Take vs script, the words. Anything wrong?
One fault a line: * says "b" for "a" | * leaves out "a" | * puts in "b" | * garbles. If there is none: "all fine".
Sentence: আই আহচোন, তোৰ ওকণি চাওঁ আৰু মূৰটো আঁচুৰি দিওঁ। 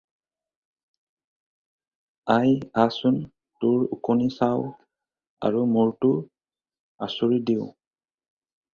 all fine